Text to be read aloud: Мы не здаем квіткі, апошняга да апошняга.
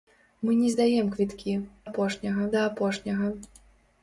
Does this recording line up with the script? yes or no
yes